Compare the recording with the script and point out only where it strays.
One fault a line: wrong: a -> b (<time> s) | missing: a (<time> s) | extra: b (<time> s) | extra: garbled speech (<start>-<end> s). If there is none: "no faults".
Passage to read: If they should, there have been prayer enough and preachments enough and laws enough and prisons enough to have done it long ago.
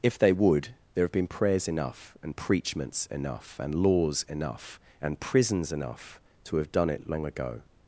wrong: should -> would (0.3 s)
wrong: prayer -> prayers (1.3 s)